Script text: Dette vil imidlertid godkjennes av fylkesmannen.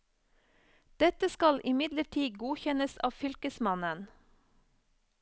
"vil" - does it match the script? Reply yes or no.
no